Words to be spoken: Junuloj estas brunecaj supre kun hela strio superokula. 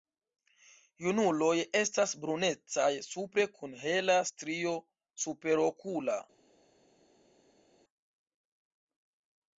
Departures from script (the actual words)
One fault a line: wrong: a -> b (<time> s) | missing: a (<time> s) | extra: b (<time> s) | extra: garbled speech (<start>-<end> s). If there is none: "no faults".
no faults